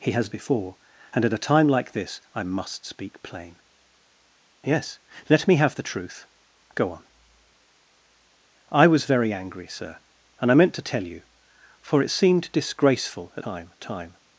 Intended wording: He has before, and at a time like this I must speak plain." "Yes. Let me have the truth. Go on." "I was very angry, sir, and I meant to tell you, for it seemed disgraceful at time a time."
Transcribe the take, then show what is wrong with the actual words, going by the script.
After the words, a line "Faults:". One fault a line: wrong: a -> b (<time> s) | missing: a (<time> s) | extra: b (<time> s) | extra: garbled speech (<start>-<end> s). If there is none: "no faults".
He has before, and at a time like this I must speak plain." "Yes. Let me have the truth. Go on." "I was very angry, sir, and I meant to tell you, for it seemed disgraceful at time a time."
Faults:
no faults